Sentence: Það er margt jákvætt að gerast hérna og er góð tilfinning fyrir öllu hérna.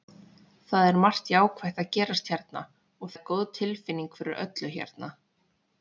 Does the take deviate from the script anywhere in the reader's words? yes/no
no